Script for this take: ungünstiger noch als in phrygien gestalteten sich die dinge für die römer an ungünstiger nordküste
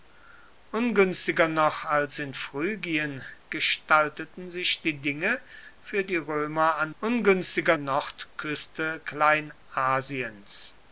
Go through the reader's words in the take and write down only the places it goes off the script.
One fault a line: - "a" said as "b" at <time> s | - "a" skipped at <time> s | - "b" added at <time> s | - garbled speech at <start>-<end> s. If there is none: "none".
none